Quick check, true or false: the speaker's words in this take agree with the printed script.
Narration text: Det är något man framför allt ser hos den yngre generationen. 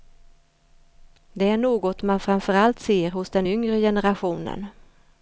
true